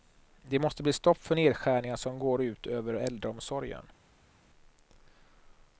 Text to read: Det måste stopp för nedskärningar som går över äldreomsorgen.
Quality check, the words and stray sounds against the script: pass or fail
fail